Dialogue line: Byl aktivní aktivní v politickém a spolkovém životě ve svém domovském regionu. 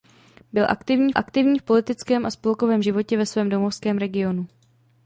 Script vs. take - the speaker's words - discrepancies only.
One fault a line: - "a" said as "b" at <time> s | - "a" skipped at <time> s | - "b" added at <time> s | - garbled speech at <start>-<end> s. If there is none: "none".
none